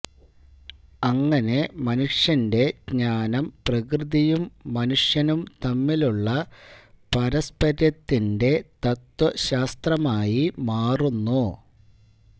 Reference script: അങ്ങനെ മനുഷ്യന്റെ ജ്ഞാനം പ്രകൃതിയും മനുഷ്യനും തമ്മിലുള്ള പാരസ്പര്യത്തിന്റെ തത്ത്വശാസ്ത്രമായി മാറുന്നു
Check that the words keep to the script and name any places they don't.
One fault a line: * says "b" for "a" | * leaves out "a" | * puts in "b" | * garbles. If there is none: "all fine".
all fine